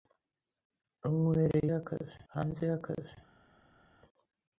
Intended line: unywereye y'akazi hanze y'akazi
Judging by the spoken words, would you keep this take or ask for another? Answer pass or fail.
pass